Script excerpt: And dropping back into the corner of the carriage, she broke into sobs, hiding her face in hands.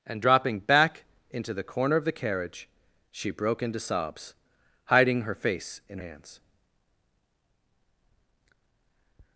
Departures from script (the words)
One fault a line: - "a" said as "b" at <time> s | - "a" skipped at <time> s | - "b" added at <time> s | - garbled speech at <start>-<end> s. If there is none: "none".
none